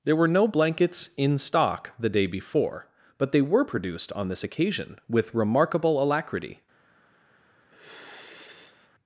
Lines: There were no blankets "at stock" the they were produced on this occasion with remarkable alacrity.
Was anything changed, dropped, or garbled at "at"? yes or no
yes